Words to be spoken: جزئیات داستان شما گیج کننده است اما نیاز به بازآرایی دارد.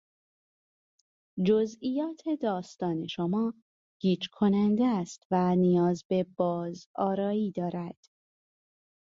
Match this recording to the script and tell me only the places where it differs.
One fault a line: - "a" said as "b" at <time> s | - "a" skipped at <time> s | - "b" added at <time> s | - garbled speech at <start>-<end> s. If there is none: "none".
- "اما" said as "و" at 5.3 s